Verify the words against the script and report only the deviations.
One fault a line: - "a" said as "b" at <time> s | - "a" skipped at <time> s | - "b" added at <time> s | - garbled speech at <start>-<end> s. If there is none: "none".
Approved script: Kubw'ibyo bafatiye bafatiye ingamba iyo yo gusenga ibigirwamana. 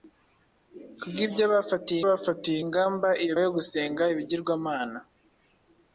none